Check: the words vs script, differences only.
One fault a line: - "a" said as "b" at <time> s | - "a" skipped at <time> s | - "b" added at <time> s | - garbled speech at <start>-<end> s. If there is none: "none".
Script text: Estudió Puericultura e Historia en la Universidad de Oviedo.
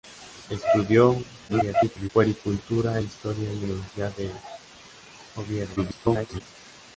- garbled speech at 1.5-2.1 s
- garbled speech at 5.8-6.4 s